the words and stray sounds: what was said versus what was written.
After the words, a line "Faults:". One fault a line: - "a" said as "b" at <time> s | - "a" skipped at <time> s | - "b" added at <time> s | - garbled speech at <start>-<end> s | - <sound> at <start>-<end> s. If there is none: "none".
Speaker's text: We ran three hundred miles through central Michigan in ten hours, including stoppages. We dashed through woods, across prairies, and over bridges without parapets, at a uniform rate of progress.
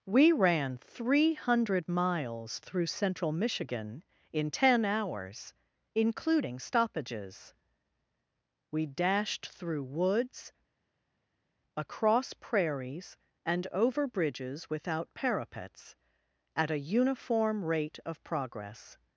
We ran three hundred miles through central Michigan in ten hours, including stoppages. We dashed through woods, across prairies, and over bridges without parapets, at a uniform rate of progress.
Faults:
none